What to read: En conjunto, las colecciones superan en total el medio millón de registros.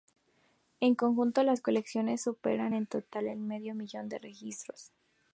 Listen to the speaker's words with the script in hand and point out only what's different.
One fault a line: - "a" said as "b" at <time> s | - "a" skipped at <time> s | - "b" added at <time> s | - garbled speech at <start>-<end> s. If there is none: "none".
none